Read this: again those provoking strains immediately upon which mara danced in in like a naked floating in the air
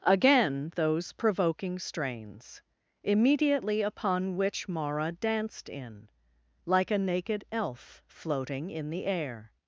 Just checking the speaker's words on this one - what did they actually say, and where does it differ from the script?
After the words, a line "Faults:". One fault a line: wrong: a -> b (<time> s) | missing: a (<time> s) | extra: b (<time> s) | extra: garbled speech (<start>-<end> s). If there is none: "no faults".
again those provoking strains immediately upon which mara danced in like a naked elf floating in the air
Faults:
missing: in (6.1 s)
extra: elf (7.5 s)